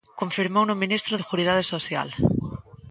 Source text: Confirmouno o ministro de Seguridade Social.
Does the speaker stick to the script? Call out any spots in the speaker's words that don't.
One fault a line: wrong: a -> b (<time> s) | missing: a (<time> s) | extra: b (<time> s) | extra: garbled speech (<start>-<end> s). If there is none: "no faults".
missing: de (1.1 s)